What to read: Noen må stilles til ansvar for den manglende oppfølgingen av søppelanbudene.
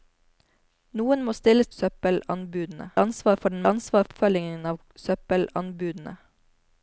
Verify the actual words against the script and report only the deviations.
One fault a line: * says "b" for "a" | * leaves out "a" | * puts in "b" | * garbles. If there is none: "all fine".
* says "søppelanbudene" for "til"
* says "ansvar" for "manglende"